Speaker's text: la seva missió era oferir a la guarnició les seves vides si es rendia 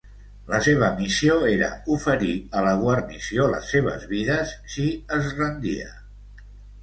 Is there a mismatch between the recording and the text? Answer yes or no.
no